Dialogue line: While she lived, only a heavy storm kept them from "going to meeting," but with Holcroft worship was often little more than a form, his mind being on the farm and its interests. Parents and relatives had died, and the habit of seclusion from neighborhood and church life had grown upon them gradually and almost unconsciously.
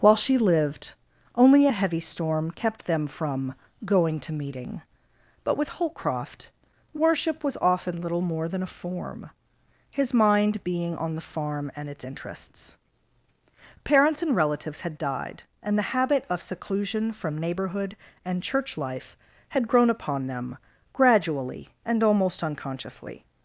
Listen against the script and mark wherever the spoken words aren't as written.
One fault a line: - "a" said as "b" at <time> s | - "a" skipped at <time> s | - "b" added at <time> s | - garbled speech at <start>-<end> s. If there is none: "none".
none